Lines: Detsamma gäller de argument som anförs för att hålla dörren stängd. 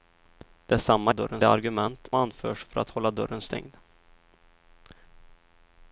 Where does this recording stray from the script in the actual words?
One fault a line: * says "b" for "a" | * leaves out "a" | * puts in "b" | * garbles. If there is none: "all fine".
* says "dörren" for "gäller"
* leaves out "som"